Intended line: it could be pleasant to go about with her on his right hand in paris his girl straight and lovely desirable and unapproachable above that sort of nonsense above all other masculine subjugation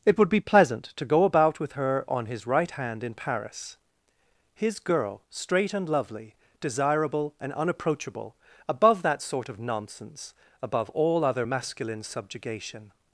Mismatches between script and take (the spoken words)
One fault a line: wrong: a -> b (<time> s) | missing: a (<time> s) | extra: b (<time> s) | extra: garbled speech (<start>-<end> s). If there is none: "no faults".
wrong: could -> would (0.2 s)